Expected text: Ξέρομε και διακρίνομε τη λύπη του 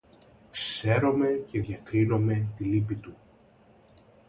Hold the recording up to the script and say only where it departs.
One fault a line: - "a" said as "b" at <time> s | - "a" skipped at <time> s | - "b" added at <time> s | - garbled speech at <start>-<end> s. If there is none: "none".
none